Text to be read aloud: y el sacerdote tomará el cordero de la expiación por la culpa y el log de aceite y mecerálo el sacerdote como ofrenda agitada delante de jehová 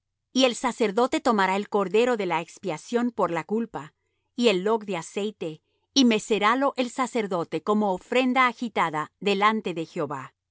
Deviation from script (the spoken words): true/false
false